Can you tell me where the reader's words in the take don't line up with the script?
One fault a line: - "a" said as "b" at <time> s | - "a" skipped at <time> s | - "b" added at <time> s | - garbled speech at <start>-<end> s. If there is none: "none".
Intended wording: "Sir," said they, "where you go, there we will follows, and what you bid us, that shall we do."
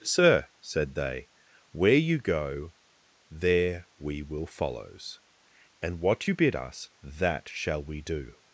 none